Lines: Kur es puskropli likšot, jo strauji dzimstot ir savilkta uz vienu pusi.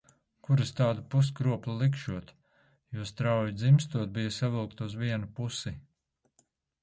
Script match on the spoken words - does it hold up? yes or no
no